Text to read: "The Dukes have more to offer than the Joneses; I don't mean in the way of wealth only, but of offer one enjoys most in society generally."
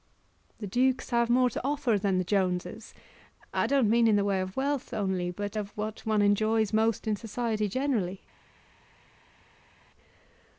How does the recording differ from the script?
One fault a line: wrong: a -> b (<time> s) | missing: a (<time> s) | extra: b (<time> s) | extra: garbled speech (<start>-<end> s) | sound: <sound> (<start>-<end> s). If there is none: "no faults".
wrong: offer -> what (5.7 s)